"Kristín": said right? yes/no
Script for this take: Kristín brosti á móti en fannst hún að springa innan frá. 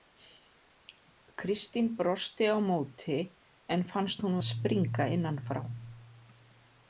yes